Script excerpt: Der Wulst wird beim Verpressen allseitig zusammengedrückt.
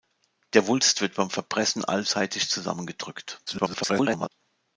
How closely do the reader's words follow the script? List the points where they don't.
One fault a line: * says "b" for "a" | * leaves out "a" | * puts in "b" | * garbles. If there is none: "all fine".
* garbles